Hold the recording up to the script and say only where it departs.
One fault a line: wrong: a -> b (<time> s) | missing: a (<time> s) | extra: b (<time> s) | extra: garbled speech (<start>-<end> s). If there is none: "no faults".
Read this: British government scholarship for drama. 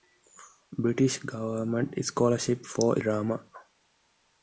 no faults